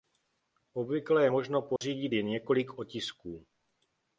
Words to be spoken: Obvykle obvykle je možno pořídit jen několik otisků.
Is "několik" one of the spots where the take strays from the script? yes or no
no